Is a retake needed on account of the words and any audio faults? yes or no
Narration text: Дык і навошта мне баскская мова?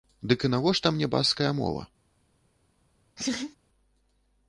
yes